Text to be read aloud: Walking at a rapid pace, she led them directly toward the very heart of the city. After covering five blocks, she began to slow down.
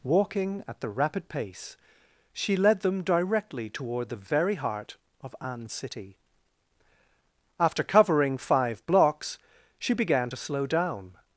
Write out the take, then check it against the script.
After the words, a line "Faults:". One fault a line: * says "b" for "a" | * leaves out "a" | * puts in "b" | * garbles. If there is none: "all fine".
Walking at the rapid pace, she led them directly toward the very heart of an city. After covering five blocks, she began to slow down.
Faults:
* says "the" for "a"
* says "an" for "the"